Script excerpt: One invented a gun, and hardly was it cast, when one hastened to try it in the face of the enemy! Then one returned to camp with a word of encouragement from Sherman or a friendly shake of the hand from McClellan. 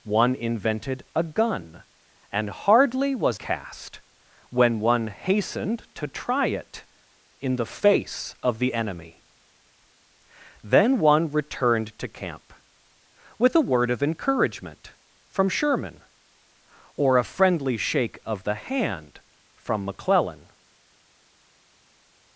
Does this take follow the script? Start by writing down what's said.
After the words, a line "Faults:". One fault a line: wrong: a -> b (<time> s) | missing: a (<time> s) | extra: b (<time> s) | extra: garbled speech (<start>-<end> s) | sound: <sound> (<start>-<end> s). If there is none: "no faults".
One invented a gun, and hardly was cast, when one hastened to try it in the face of the enemy! Then one returned to camp with a word of encouragement from Sherman or a friendly shake of the hand from McClellan.
Faults:
missing: it (3.4 s)